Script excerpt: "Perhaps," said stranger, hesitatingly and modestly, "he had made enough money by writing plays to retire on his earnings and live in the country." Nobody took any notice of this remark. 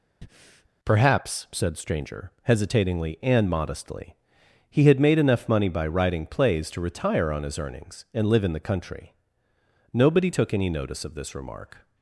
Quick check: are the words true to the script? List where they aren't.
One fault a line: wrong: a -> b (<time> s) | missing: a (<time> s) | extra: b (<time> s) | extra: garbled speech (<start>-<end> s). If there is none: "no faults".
no faults